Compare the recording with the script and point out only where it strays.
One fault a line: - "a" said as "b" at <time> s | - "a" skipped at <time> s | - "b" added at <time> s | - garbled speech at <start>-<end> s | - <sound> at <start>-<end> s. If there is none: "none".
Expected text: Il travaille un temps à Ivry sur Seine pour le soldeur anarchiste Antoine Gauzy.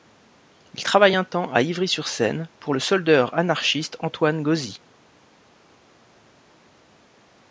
none